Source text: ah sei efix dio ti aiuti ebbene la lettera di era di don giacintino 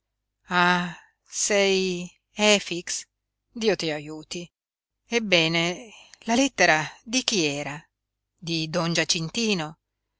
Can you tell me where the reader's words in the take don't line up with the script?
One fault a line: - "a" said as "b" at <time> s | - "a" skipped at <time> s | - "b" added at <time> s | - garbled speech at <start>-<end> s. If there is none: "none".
- "chi" added at 7.2 s